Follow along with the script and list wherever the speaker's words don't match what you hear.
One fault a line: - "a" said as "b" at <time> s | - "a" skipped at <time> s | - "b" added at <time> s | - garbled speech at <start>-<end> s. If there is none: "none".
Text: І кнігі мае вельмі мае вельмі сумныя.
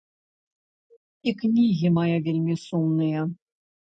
- "мае вельмі" skipped at 2.6 s